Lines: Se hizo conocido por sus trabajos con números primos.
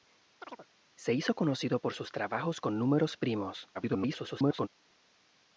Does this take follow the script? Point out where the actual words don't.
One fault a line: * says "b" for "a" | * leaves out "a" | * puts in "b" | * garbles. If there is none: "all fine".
* garbles